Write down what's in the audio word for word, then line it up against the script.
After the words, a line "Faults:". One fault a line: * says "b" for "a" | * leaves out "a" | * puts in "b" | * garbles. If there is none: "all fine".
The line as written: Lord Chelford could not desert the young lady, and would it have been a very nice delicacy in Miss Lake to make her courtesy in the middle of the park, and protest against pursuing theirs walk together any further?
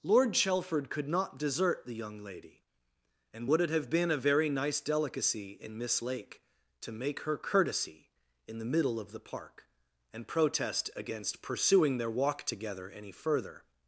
Lord Chelford could not desert the young lady, and would it have been a very nice delicacy in Miss Lake to make her courtesy in the middle of the park, and protest against pursuing their walk together any further?
Faults:
* says "their" for "theirs"